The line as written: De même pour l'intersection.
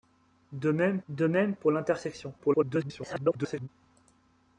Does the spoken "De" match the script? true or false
true